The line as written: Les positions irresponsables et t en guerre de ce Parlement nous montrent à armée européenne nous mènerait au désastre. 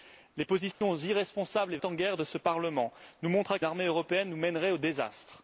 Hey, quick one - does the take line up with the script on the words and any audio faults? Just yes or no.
no